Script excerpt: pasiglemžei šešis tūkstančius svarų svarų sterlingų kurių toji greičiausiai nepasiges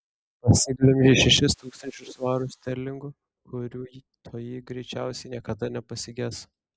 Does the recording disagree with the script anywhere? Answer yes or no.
yes